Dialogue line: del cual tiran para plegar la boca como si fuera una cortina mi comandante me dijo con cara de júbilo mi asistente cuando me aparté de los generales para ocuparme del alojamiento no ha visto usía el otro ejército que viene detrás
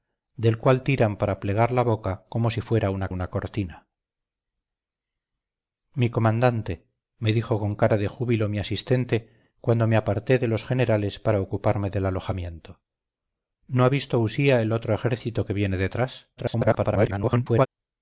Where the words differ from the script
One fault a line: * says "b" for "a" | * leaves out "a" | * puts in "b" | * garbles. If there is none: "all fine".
* puts in "una"
* garbles